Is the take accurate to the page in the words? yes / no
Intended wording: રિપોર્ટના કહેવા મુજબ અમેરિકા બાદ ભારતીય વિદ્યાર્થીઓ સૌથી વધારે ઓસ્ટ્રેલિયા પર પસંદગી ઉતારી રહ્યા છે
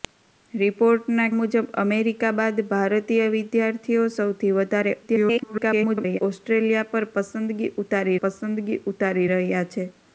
no